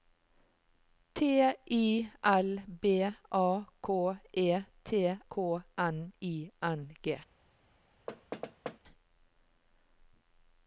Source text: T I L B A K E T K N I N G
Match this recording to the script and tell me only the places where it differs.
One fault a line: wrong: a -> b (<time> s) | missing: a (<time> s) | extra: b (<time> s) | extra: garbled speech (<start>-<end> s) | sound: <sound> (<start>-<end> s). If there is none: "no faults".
sound: thud (8.1-8.8 s)